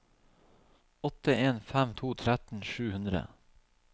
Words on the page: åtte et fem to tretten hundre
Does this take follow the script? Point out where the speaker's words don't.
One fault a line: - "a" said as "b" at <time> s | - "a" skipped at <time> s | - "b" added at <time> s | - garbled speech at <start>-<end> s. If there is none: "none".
- "et" said as "en" at 1.4 s
- "sju" added at 2.6 s